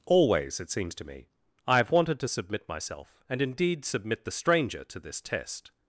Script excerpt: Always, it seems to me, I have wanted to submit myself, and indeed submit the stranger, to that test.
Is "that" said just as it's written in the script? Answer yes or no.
no